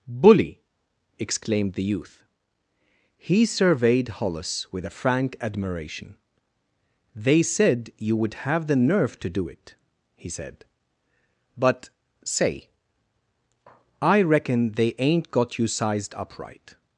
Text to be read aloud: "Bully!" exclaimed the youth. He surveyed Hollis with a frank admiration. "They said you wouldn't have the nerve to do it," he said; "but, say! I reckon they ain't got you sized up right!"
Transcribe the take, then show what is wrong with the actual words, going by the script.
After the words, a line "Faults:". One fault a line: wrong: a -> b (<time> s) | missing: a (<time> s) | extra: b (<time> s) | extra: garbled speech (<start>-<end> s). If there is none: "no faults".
"Bully!" exclaimed the youth. He surveyed Hollis with a frank admiration. "They said you would have the nerve to do it," he said; "but, say! I reckon they ain't got you sized up right!"
Faults:
wrong: wouldn't -> would (8.2 s)